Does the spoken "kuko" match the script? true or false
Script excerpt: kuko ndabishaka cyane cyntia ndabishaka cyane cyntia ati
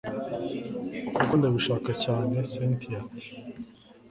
true